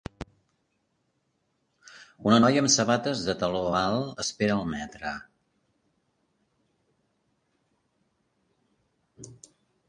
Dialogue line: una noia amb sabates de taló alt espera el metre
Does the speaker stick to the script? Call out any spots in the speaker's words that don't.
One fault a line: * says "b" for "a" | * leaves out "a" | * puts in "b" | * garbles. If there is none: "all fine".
all fine